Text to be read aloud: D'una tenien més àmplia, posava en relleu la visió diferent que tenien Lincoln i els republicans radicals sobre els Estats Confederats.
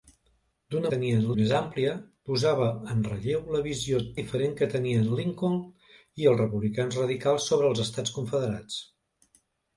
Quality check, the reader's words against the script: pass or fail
pass